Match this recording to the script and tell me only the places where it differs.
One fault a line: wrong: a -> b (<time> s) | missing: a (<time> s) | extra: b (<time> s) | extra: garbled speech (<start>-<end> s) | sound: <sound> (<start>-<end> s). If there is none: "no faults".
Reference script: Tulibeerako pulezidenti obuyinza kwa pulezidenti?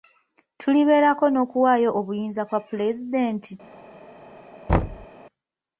wrong: pulezidenti -> n'okuwaayo (1.3 s)
sound: thud (4.7-5.1 s)